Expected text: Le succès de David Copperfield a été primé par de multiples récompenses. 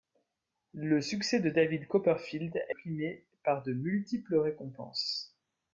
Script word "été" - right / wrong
wrong